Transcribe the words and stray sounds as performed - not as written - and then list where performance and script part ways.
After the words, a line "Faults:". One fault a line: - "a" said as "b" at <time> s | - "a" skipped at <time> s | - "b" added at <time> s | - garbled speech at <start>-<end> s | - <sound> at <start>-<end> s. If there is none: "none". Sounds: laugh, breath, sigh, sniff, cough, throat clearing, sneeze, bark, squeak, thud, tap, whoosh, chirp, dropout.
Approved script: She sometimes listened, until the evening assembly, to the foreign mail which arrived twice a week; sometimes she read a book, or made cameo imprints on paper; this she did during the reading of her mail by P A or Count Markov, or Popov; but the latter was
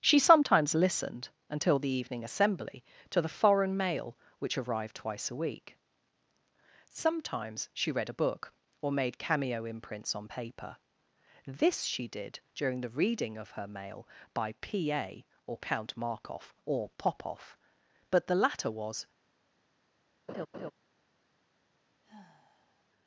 She sometimes listened, until the evening assembly, to the foreign mail which arrived twice a week; sometimes she read a book, or made cameo imprints on paper; this she did during the reading of her mail by P A or Count Markov, or Popov; but the latter was
Faults:
- laugh at 20.3-20.7 s
- sigh at 22.0-22.8 s